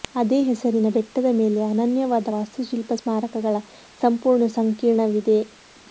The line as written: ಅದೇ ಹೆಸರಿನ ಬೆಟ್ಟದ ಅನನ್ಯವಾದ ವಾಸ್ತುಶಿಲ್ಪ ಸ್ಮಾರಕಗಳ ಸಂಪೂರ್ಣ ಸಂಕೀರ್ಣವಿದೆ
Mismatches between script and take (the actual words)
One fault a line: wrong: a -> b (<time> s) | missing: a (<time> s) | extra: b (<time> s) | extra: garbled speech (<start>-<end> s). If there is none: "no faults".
extra: ಮೇಲೆ (1.4 s)